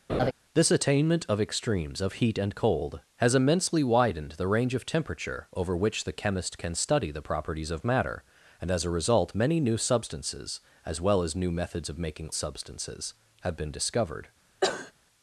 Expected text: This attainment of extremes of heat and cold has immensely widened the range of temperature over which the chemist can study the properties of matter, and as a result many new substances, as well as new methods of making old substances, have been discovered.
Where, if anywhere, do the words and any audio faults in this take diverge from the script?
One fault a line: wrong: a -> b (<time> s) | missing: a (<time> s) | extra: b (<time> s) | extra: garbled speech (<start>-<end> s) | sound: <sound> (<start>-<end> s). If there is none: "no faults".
sound: laugh (0.1-0.3 s)
missing: old (12.3 s)
sound: cough (14.6-14.9 s)